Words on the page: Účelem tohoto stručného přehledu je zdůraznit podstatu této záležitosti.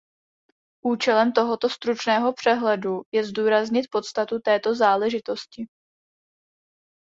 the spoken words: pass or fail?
pass